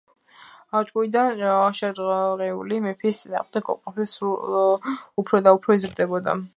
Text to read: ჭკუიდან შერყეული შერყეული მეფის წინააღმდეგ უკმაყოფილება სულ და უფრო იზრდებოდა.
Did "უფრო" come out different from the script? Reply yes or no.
no